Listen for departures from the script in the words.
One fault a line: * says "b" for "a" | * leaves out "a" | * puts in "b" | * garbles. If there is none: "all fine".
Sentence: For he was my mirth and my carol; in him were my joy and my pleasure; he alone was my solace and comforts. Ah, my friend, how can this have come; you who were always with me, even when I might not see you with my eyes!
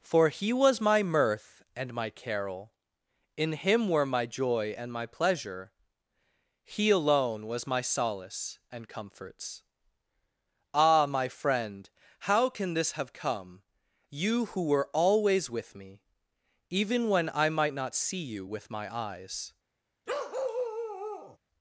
all fine